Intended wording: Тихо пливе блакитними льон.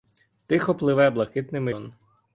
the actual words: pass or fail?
pass